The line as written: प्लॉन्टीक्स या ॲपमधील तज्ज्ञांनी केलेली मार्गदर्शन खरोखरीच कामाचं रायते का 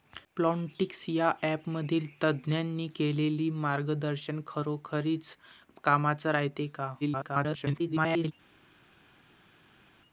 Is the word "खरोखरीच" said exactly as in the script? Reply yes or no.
yes